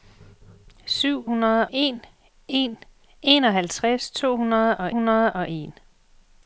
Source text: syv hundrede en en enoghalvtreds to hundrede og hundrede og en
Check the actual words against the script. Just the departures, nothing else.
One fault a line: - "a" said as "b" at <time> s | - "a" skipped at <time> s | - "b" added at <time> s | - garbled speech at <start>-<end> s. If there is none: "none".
none